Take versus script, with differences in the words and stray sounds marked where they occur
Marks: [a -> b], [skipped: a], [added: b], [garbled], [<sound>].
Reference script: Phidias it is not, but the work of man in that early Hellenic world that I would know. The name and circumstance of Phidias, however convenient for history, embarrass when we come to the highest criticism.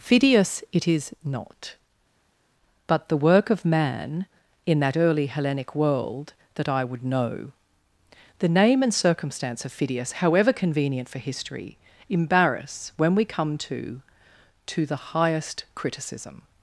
Phidias it is not, but the work of man in that early Hellenic world that I would know. The name and circumstance of Phidias, however convenient for history, embarrass when we come to [added: to] the highest criticism.